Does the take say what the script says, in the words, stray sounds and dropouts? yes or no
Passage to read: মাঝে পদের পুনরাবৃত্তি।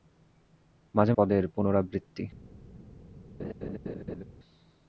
no